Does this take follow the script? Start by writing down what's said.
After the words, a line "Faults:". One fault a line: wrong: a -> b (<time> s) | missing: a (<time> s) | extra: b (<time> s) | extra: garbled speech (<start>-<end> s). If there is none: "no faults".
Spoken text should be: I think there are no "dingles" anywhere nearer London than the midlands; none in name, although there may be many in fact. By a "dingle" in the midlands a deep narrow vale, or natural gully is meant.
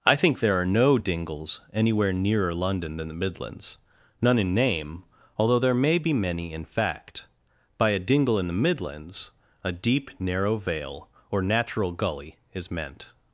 I think there are no "dingles" anywhere nearer London than the midlands; none in name, although there may be many in fact. By a "dingle" in the midlands a deep narrow vale, or natural gully is meant.
Faults:
no faults